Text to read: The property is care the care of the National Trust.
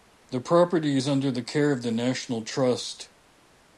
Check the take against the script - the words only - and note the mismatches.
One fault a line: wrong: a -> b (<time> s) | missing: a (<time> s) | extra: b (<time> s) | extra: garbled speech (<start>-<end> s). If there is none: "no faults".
wrong: care -> under (1.1 s)